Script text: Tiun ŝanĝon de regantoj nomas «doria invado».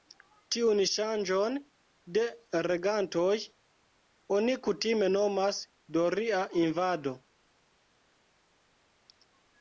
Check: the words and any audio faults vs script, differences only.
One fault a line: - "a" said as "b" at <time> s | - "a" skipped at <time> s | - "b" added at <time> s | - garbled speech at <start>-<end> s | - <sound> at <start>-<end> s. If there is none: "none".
- "oni kutime" added at 4.4 s